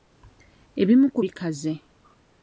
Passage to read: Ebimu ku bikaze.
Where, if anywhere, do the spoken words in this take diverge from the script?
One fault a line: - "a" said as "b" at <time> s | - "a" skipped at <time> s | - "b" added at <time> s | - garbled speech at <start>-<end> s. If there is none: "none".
none